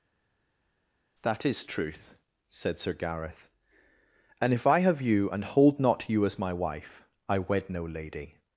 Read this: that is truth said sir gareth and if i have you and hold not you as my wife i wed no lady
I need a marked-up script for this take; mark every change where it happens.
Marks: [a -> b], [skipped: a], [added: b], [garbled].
that is truth said sir gareth and if i have you and hold not you as my wife i wed no lady